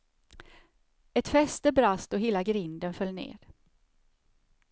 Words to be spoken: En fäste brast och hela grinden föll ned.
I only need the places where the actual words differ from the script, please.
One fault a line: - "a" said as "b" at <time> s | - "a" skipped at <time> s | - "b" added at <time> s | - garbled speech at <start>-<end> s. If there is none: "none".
- "En" said as "Ett" at 1.1 s